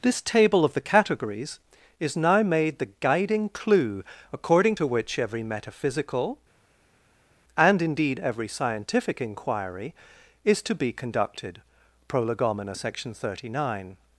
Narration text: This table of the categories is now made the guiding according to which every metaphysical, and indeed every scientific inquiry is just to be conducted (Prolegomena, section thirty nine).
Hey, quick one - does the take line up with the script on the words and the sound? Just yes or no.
no